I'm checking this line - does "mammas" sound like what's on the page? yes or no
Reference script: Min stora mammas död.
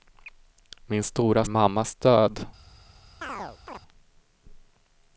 yes